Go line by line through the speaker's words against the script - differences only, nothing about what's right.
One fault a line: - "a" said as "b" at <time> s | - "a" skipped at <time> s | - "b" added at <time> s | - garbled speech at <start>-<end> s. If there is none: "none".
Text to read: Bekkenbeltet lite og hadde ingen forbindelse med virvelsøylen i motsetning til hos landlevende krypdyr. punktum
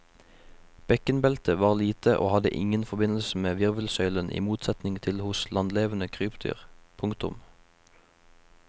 - "var" added at 1.6 s